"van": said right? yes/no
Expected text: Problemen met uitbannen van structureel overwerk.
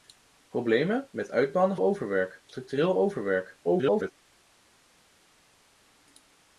no